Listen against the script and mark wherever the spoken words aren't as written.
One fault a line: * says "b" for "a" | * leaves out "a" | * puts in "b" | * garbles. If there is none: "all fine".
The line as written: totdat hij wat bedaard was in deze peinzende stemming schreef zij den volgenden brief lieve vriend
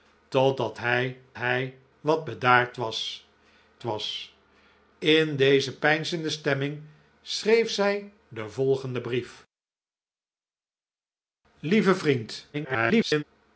* puts in "hij"
* puts in "was"
* garbles